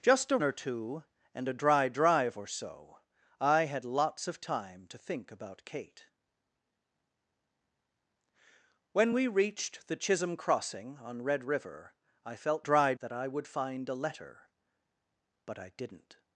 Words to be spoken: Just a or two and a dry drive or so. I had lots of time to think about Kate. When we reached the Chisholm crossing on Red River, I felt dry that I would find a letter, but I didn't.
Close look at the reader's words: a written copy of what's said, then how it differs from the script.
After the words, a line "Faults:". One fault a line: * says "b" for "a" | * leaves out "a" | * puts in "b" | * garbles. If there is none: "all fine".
Just a or two and a dry drive or so. I had lots of time to think about Kate. When we reached the Chisholm crossing on Red River, I felt dry that I would find a letter, but I didn't.
Faults:
all fine